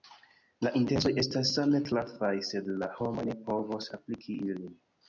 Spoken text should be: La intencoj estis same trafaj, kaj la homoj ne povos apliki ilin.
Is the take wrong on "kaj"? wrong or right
wrong